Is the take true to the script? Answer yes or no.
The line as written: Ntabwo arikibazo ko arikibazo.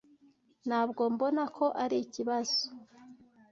no